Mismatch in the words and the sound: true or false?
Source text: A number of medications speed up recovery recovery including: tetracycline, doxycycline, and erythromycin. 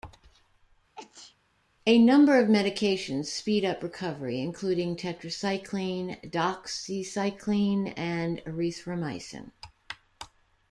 true